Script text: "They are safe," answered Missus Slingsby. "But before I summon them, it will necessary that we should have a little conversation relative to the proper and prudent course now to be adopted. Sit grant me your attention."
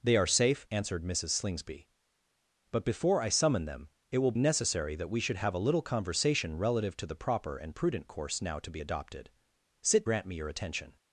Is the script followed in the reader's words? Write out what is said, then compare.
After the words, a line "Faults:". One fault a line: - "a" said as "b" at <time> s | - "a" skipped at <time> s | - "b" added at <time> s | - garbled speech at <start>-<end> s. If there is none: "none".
"They are safe," answered Missus Slingsby. "But before I summon them, it will necessary that we should have a little conversation relative to the proper and prudent course now to be adopted. Sit grant me your attention."
Faults:
none